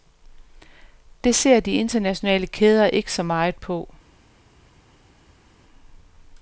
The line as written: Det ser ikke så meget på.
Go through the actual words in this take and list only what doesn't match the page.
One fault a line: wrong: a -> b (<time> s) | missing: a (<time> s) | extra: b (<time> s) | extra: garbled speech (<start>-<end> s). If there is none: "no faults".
extra: de internationale kæder (1.6 s)